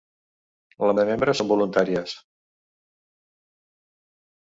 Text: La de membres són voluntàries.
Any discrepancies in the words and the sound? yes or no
no